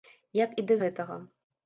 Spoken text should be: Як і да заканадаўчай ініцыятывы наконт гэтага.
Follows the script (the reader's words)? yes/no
no